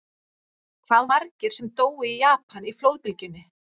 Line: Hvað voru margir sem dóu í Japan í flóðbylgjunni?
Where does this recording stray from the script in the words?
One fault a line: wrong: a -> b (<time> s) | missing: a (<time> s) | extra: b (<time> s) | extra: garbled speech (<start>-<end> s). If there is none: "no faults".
missing: voru (1.1 s)